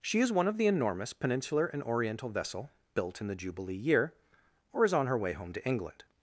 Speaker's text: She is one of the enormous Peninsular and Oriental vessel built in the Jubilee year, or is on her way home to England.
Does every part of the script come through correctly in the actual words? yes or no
yes